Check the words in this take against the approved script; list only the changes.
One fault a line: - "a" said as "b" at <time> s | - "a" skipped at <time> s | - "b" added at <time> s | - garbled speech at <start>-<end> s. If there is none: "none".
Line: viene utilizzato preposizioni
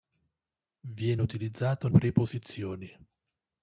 none